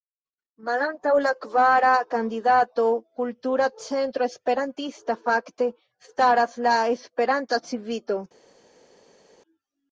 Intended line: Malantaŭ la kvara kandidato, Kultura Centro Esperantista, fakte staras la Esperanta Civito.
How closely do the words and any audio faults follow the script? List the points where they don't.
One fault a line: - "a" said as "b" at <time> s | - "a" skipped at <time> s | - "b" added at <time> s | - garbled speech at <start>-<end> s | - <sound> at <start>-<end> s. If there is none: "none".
none